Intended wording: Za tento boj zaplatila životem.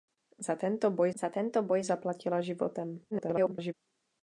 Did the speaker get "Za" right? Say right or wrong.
right